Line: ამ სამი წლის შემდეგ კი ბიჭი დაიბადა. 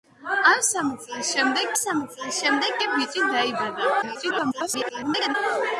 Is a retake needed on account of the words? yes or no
yes